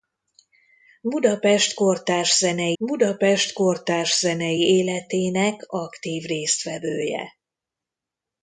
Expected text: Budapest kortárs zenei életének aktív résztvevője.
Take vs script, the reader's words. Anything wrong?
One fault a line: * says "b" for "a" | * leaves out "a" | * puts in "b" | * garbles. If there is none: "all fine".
* puts in "budapest kortárs zenei"